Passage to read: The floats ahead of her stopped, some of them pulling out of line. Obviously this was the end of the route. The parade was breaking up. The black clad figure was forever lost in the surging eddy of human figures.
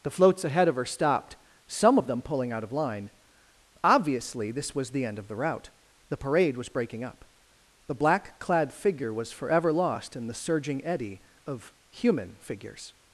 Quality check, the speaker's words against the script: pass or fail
pass